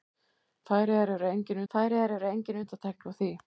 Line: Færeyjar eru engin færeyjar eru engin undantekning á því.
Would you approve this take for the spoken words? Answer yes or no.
yes